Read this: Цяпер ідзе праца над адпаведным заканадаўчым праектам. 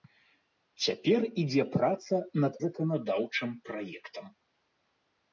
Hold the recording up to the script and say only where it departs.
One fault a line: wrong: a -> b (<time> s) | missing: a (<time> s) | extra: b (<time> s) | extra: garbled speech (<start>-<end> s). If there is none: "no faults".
missing: адпаведным (2.5 s)